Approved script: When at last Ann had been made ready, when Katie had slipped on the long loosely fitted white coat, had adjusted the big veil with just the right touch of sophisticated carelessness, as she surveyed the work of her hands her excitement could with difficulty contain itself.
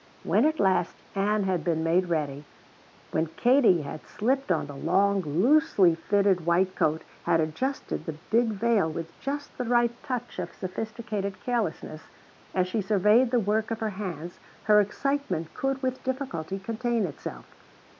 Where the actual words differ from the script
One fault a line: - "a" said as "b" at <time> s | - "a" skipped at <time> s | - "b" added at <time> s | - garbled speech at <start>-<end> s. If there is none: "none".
none